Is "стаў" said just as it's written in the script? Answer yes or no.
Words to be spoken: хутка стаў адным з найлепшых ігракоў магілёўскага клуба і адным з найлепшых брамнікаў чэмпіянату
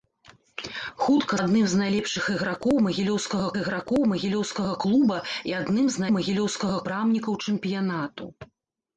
no